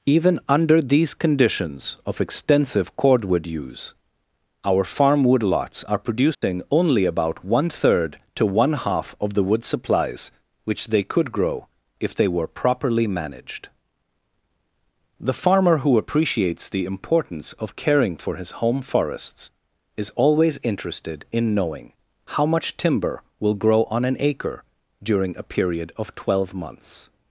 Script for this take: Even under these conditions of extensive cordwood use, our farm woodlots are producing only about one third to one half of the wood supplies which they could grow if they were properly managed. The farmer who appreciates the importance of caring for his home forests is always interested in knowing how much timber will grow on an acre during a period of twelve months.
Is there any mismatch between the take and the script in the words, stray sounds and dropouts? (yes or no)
yes